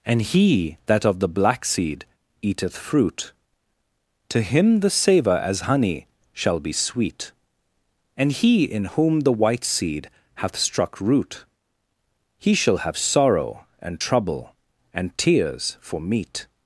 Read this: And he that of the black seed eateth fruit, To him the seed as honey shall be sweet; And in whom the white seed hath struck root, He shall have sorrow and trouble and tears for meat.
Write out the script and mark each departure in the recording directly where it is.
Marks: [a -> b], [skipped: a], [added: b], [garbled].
And he that of the black seed eateth fruit, To him the [seed -> savour] as honey shall be sweet; And [added: he] in whom the white seed hath struck root, He shall have sorrow and trouble and tears for meat.